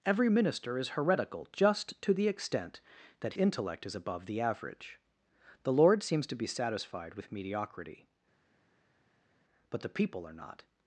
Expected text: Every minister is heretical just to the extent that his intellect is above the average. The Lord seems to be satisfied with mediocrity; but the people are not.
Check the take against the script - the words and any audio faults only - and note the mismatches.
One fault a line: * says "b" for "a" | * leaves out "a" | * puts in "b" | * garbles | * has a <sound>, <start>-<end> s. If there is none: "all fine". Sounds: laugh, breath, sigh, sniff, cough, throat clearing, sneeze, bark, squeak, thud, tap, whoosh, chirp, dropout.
* leaves out "his"